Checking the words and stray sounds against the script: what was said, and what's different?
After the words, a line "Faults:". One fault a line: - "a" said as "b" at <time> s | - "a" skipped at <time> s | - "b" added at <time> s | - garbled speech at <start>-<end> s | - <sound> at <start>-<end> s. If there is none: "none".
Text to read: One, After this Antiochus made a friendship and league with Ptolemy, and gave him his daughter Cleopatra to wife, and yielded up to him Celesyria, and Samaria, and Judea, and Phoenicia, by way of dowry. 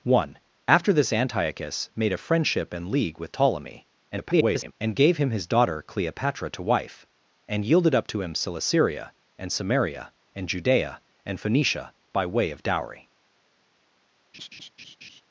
One, After this Antiochus made a friendship and league with Ptolemy, [garbled] and gave him his daughter Cleopatra to wife, and yielded up to him Celesyria, and Samaria, and Judea, and Phoenicia, by way of dowry.
Faults:
- garbled speech at 4.1-4.7 s
- laugh at 14.3-15.2 s